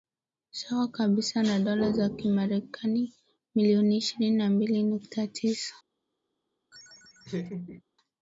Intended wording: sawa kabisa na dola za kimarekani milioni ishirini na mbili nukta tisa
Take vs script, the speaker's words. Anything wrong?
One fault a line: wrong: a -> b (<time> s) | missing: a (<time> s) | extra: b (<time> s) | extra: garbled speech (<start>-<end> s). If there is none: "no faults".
no faults